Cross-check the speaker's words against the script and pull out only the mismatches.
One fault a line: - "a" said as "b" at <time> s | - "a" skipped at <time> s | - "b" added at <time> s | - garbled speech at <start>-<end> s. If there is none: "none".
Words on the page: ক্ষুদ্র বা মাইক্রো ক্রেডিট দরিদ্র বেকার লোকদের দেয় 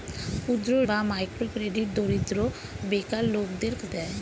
none